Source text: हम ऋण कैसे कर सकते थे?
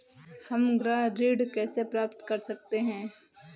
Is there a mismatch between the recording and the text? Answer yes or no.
yes